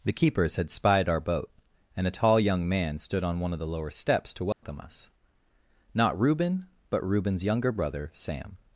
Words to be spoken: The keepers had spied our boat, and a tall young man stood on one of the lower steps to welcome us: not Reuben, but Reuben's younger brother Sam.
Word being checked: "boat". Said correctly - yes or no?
yes